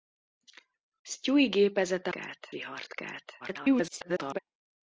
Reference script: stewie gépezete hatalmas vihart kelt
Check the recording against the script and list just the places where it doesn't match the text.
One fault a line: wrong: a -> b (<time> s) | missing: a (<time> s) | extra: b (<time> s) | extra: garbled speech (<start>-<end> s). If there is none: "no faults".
wrong: hatalmas -> kelt (2.1 s)
extra: garbled speech (3.4-4.4 s)